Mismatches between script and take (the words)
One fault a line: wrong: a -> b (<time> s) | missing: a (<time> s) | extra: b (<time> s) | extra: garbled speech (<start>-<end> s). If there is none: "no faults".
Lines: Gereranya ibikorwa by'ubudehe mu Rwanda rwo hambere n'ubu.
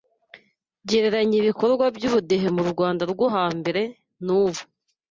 no faults